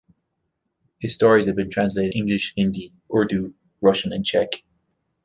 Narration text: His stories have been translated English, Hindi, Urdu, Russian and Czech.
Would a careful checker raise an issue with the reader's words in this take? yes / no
no